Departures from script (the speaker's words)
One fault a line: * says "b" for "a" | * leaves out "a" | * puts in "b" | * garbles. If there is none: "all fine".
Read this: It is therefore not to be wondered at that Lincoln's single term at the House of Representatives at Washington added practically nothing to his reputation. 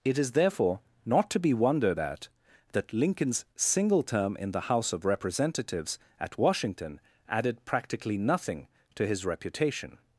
* says "in" for "at"